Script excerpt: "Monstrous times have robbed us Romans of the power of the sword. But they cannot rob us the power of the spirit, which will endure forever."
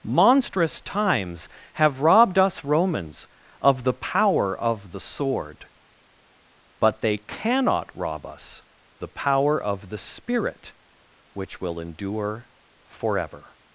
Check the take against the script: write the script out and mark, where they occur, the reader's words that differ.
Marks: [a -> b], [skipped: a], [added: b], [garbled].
"Monstrous times have robbed us Romans of the power of the sword. But they cannot rob us the power of the spirit, which will endure forever."